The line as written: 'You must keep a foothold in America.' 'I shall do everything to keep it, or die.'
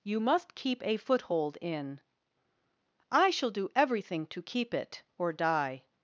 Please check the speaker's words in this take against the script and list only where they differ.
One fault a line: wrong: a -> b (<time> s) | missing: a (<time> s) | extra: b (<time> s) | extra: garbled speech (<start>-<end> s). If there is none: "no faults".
missing: America (2.0 s)